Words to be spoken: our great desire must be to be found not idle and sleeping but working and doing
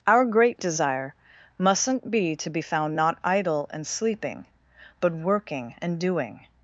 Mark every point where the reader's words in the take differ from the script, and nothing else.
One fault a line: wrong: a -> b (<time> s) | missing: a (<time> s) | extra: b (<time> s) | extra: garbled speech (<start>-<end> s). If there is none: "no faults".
wrong: must -> mustn't (1.6 s)